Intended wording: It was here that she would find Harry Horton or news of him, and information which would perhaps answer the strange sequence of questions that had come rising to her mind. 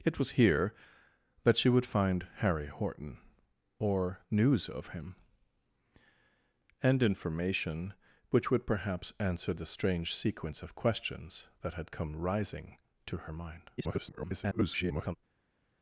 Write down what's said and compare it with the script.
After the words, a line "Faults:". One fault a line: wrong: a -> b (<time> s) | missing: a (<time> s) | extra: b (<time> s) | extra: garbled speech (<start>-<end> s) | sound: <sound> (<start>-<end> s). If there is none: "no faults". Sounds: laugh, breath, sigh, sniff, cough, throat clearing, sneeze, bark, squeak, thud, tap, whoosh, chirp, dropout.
It was here that she would find Harry Horton or news of him, and information which would perhaps answer the strange sequence of questions that had come rising to her mind. [garbled]
Faults:
extra: garbled speech (13.8-15.2 s)